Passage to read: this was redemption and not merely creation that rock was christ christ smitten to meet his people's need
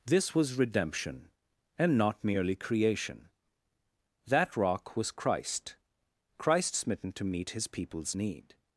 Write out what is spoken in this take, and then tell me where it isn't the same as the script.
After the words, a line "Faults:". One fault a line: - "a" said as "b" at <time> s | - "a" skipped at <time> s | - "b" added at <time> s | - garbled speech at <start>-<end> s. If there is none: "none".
this was redemption and not merely creation that rock was christ christ smitten to meet his people's need
Faults:
none